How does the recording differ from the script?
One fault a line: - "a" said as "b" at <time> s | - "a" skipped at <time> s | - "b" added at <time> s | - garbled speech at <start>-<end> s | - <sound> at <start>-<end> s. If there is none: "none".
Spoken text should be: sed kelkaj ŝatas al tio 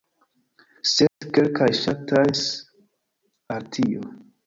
- dropout at 1.1-1.2 s